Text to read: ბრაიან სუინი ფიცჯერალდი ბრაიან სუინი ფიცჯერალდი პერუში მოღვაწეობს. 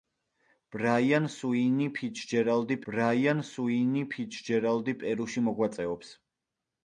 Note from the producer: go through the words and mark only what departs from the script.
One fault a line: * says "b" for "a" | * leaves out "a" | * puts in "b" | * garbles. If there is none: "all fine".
all fine